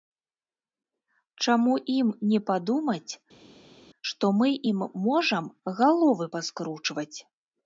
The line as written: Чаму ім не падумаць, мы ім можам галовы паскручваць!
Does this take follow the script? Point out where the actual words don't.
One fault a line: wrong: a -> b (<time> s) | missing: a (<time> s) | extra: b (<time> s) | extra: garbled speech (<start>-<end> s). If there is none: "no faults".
extra: што (4.1 s)